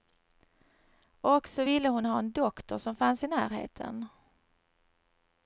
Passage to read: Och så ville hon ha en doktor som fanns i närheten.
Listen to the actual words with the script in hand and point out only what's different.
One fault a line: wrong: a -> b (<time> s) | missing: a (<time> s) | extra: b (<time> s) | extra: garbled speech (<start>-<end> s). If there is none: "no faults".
no faults